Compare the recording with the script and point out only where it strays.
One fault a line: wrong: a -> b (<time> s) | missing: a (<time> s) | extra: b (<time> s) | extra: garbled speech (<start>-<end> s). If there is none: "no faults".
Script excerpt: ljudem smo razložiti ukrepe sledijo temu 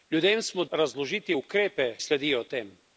no faults